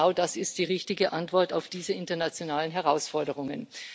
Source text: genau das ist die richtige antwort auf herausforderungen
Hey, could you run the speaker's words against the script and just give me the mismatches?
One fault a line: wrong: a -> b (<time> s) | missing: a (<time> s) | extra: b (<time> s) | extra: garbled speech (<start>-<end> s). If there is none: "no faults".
extra: diese internationalen (1.7 s)